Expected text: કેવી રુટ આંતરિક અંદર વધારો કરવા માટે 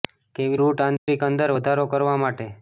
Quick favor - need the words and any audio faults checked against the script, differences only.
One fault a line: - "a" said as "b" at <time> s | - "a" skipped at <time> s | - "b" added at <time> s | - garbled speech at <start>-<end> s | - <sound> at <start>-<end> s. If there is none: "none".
- dropout at 1.0-1.1 s